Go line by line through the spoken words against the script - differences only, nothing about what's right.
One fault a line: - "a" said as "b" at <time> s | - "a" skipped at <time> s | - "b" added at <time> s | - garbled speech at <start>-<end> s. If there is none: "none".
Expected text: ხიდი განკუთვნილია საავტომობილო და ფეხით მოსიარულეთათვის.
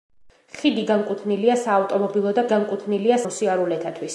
- "ფეხით" said as "განკუთვნილია" at 2.5 s